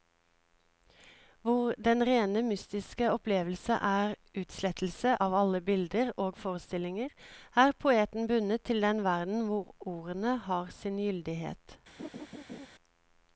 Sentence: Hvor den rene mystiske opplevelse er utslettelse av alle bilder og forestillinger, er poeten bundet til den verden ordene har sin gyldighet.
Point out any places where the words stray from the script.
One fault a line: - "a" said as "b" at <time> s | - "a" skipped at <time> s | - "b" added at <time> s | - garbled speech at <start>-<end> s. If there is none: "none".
- "hvor" added at 9.5 s